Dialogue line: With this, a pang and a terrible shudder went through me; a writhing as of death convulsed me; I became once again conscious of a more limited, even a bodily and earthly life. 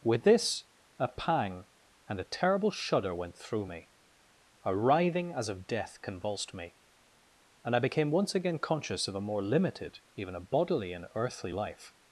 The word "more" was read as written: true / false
true